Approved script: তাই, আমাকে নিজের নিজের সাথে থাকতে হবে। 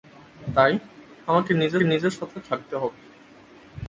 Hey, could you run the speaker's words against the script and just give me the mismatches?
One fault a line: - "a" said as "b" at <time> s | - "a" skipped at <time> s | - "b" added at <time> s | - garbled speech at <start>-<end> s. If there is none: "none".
none